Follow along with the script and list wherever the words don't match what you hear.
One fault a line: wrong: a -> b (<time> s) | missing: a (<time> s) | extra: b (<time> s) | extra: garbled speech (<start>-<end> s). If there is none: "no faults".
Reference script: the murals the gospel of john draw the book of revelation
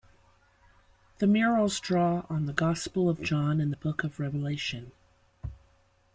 extra: draw on (1.8 s)
wrong: draw -> and (3.6 s)